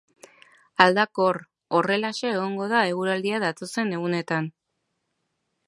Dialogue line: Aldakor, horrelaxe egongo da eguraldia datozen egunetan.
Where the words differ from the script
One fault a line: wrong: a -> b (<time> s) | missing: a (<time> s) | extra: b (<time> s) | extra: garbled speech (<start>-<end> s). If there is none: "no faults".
no faults